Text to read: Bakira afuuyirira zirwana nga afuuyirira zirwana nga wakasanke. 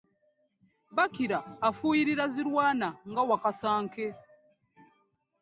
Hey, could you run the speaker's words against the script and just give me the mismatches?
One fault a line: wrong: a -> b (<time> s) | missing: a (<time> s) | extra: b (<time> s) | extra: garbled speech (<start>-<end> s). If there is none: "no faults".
missing: afuuyirira zirwana nga (3.2 s)